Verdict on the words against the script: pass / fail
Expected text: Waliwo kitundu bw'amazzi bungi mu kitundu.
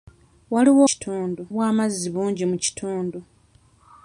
pass